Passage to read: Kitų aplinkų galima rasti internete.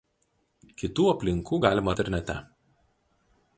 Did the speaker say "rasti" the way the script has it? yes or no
no